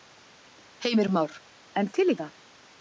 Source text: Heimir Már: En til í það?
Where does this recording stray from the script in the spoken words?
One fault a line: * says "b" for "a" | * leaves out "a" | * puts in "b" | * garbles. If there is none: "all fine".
all fine